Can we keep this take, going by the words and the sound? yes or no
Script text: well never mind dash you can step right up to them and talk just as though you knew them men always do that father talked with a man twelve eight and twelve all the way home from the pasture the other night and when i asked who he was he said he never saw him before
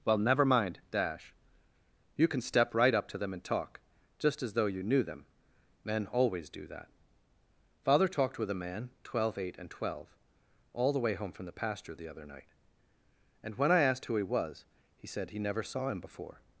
yes